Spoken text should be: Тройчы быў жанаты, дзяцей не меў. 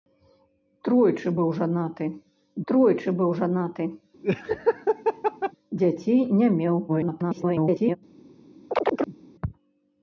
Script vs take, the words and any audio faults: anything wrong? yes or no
yes